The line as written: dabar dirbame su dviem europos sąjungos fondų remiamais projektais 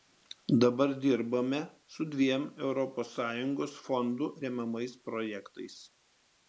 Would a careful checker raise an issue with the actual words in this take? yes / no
no